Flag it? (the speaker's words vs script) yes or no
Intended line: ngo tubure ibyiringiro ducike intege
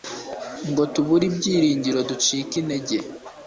no